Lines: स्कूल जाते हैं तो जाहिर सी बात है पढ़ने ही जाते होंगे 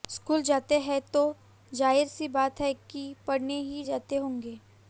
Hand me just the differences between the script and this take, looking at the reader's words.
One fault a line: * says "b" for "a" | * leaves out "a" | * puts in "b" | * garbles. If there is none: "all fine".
* puts in "कि"